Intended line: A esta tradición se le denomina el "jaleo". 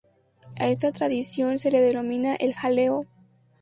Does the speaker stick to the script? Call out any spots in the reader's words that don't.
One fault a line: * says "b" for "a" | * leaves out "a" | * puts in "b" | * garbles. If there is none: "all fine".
all fine